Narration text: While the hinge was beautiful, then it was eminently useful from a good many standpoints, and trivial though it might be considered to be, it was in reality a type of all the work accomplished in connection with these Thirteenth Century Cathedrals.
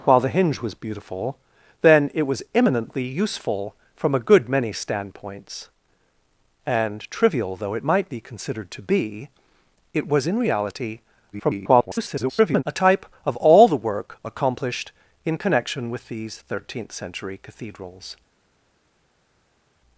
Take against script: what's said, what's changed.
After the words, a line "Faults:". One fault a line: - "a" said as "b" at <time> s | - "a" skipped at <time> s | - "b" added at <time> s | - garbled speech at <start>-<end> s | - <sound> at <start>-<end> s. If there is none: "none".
While the hinge was beautiful, then it was eminently useful from a good many standpoints, and trivial though it might be considered to be, it was in reality [garbled] a type of all the work accomplished in connection with these Thirteenth Century Cathedrals.
Faults:
- garbled speech at 11.3-12.6 s